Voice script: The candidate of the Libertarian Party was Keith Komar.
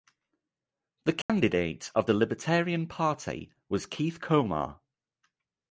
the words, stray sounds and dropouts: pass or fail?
fail